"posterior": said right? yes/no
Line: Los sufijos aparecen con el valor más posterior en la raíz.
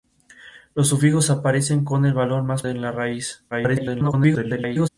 no